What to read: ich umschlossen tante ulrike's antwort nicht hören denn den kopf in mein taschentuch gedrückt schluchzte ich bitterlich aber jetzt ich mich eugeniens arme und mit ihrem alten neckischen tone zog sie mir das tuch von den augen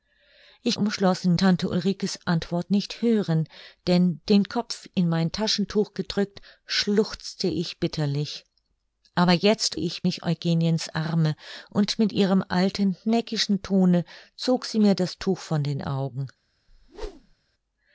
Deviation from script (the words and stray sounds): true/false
true